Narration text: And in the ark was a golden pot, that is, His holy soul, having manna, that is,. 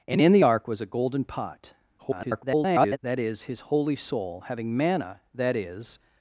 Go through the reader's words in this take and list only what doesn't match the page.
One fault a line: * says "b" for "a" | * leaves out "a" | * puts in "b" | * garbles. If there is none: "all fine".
* garbles